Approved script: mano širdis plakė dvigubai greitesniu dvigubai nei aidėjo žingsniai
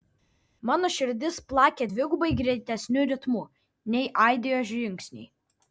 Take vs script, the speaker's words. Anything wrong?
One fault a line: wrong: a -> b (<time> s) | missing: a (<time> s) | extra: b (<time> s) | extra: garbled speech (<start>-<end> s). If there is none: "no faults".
wrong: dvigubai -> ritmu (3.1 s)